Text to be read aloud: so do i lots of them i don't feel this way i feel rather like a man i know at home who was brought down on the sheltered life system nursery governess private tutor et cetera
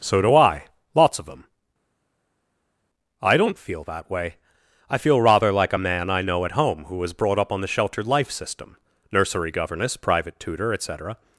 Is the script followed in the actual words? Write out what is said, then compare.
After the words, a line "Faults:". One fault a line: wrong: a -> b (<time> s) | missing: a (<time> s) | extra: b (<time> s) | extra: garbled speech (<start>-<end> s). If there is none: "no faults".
so do i lots of them i don't feel that way i feel rather like a man i know at home who was brought up on the sheltered life system nursery governess private tutor et cetera
Faults:
wrong: this -> that (3.8 s)
wrong: down -> up (7.4 s)